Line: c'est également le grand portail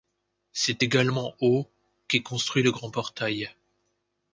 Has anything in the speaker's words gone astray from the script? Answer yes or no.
yes